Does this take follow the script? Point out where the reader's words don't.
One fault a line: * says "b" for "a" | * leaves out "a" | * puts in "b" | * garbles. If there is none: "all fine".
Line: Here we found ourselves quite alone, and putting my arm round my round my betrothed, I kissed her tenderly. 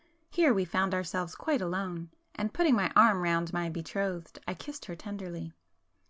* leaves out "round my"